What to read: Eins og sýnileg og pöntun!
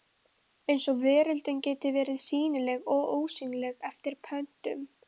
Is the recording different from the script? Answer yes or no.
yes